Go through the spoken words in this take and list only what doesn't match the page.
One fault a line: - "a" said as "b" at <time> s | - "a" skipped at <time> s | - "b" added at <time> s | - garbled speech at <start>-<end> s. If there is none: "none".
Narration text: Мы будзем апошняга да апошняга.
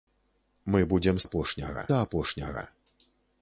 none